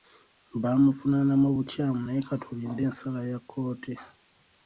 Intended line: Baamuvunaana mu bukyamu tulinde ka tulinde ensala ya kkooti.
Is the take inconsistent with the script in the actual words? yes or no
yes